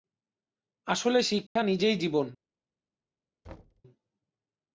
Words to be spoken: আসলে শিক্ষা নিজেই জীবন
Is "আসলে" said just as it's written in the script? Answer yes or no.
yes